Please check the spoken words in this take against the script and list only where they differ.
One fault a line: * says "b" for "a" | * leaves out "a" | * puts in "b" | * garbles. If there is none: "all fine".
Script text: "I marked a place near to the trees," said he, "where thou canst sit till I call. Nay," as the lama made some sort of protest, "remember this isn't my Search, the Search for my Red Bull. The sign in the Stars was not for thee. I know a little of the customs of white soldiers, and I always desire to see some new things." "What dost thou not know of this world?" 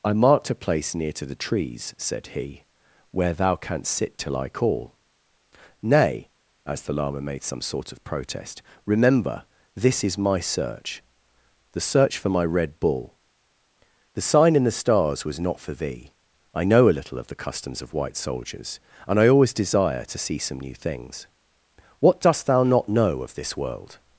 * says "is" for "isn't"